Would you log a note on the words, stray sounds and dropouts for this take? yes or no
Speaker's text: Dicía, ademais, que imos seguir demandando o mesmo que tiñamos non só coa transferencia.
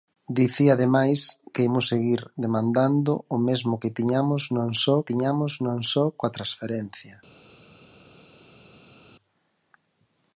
yes